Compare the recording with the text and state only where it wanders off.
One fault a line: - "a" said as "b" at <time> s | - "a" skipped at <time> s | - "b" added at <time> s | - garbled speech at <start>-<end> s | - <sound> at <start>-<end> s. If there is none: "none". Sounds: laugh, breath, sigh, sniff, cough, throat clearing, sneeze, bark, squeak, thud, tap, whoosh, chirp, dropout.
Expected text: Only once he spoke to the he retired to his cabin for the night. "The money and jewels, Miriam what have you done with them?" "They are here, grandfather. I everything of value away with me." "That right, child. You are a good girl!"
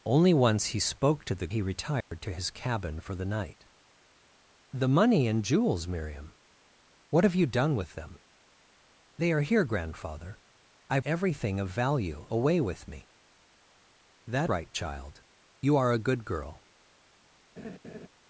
- dropout at 2.0-2.1 s
- laugh at 17.6-18.1 s